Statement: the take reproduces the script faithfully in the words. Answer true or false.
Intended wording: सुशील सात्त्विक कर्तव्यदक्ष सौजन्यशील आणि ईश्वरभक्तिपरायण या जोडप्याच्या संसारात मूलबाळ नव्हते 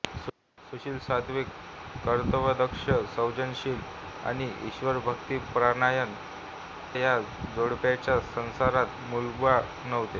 true